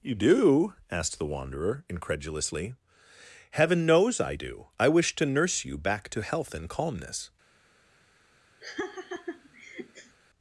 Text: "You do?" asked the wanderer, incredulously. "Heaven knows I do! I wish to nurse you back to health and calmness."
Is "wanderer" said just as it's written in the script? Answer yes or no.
yes